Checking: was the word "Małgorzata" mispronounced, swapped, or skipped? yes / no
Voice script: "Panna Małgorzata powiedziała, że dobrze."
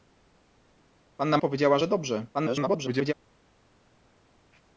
yes